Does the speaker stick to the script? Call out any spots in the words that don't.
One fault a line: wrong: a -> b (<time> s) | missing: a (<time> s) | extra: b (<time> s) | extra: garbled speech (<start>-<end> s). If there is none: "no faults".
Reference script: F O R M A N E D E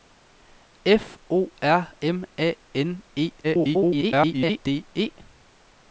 extra: garbled speech (3.4-4.6 s)